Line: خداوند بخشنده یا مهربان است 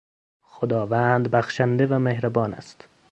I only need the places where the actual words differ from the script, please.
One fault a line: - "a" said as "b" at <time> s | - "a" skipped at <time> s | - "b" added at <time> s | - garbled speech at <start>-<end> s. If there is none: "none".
- "یا" said as "و" at 1.9 s